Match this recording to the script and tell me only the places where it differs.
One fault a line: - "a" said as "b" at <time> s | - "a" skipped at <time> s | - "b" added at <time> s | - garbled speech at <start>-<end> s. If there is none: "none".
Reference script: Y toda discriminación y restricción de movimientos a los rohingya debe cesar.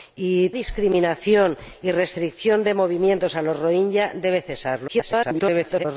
- "toda" skipped at 0.5 s
- garbled speech at 4.9-5.9 s